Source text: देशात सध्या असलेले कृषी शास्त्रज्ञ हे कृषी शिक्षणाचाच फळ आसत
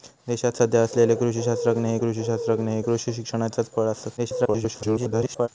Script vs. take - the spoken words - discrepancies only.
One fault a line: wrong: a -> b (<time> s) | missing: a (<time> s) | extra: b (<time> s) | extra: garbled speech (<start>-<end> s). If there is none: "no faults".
extra: शास्त्रज्ञ हे कृषी (2.2 s)
extra: garbled speech (4.2-5.5 s)